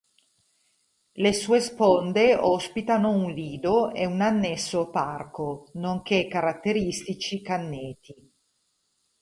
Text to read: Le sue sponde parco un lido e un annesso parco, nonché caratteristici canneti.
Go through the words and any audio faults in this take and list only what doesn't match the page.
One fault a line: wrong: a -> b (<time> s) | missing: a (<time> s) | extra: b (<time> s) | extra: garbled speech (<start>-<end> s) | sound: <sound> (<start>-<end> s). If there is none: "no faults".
wrong: parco -> ospitano (2.4 s)